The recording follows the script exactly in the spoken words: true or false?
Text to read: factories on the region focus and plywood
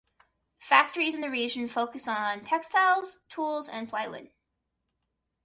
false